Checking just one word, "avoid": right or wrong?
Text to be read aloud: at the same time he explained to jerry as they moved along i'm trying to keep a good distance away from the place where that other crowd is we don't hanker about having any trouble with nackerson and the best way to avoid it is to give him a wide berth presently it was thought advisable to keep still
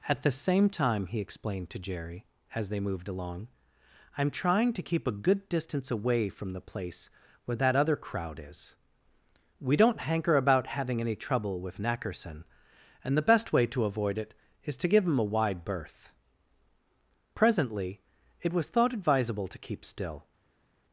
right